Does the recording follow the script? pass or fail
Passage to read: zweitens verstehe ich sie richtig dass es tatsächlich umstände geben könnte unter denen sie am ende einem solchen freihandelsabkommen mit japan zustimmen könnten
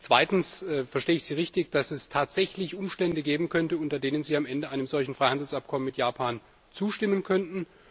pass